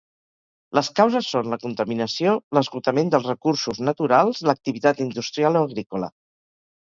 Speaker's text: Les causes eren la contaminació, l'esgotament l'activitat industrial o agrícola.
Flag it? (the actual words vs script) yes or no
yes